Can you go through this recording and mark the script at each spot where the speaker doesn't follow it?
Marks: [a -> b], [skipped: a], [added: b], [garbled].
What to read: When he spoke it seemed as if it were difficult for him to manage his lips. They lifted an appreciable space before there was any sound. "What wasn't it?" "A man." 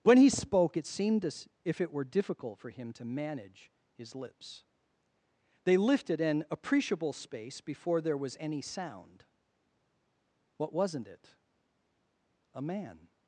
When he spoke it seemed as if it were difficult for him to manage his lips. They lifted an appreciable space before there was any sound. "What wasn't it?" "A man."